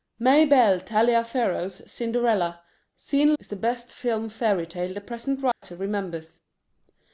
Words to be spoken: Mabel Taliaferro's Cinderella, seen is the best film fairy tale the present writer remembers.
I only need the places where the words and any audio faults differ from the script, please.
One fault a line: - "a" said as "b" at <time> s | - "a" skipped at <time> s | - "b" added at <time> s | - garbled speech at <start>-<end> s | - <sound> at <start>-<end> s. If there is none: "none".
- dropout at 5.5-5.6 s